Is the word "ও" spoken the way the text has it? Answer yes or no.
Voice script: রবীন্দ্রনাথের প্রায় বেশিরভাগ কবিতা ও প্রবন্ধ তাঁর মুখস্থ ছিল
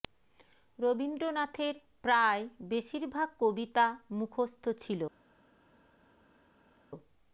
no